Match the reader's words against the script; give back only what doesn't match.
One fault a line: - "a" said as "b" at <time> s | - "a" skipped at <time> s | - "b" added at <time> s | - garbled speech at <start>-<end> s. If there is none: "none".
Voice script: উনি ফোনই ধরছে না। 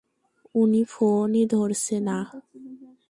none